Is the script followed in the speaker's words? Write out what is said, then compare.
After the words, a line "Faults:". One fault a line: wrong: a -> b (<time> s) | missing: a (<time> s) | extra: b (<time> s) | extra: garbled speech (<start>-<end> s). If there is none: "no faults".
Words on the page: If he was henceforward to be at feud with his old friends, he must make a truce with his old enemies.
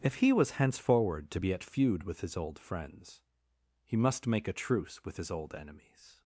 If he was henceforward to be at feud with his old friends, he must make a truce with his old enemies.
Faults:
no faults